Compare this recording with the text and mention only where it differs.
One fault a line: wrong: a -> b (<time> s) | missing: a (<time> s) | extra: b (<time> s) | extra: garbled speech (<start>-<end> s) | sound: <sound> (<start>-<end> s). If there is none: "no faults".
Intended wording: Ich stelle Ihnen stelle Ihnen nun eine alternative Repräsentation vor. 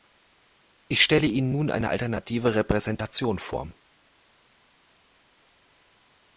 missing: stelle Ihnen (1.5 s)